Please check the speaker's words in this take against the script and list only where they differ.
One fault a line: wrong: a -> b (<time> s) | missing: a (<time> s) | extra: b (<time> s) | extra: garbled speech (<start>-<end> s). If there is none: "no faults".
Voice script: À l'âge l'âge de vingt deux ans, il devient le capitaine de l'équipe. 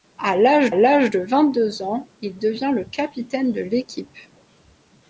no faults